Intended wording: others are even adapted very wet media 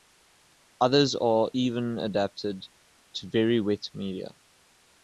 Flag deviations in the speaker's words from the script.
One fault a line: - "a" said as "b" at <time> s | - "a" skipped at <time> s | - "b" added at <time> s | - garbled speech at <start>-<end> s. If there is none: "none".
- "to" added at 3.1 s